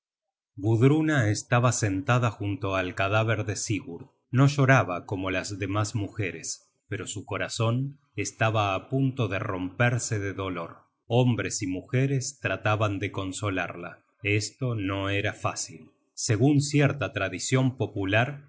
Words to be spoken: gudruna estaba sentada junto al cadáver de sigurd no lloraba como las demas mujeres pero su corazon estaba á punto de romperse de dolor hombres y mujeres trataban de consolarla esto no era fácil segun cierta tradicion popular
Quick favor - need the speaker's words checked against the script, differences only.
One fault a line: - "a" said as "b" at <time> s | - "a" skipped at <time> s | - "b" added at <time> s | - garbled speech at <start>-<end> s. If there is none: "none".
none